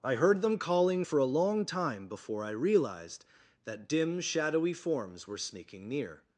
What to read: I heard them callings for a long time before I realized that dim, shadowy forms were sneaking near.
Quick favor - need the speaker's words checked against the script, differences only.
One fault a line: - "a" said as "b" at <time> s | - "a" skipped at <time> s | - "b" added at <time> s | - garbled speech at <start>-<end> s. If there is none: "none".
- "callings" said as "calling" at 0.6 s